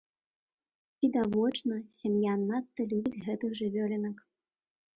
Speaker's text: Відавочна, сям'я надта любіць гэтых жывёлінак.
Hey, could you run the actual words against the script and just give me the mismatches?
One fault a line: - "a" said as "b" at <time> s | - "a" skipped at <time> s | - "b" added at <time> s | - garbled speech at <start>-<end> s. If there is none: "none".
none